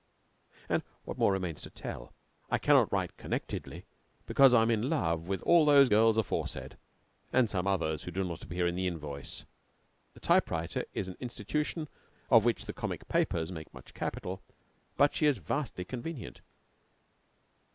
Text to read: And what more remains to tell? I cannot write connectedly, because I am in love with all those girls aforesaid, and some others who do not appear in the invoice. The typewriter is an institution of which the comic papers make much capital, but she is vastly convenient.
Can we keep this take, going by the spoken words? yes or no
yes